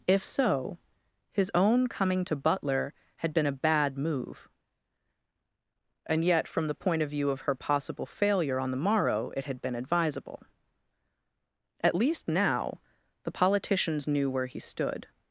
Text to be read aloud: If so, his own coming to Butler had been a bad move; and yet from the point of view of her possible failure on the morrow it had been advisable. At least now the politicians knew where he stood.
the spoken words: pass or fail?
pass